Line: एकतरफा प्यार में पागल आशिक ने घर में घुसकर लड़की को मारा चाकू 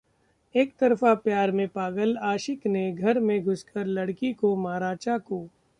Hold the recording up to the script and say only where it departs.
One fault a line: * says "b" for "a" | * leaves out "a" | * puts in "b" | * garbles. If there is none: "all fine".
all fine